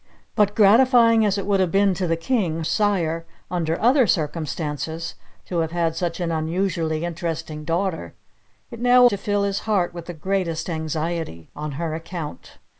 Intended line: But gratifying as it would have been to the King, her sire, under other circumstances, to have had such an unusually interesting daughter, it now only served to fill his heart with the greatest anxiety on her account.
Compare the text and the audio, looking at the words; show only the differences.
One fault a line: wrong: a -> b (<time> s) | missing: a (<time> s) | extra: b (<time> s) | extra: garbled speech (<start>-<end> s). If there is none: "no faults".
missing: her (2.6 s)
missing: only served (9.1 s)